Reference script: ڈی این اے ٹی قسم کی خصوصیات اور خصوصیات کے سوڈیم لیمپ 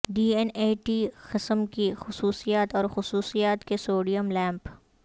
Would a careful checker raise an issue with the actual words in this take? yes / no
no